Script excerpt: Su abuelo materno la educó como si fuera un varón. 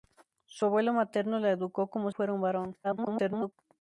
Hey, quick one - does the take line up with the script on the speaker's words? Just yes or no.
no